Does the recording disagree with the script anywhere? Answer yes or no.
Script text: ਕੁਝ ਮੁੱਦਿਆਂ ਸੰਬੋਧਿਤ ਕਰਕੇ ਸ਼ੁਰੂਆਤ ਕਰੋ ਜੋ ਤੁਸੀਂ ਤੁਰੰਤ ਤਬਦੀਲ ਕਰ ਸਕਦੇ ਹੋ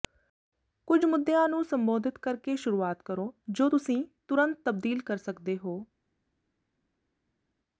yes